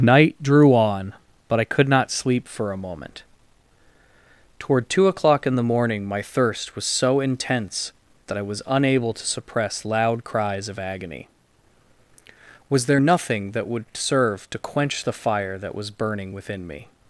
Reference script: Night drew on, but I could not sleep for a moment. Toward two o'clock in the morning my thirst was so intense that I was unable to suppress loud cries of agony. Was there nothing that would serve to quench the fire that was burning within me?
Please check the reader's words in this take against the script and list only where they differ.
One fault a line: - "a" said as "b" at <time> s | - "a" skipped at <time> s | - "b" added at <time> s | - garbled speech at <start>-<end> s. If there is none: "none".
none